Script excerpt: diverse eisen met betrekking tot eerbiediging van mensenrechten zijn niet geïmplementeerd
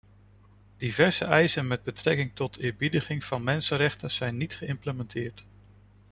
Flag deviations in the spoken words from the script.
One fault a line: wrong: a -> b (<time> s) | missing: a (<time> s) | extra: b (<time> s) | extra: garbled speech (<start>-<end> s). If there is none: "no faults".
no faults